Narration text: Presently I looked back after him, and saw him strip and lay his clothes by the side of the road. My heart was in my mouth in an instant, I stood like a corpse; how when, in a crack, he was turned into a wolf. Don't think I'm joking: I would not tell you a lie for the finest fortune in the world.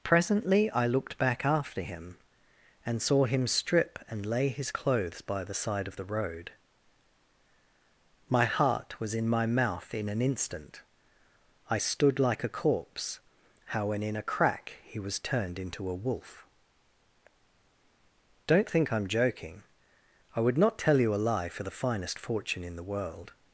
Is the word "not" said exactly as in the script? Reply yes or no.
yes